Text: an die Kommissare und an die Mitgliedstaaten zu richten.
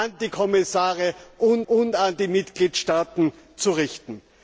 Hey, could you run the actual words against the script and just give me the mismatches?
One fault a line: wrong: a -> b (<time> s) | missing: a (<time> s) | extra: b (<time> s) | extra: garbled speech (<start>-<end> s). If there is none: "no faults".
extra: und (1.7 s)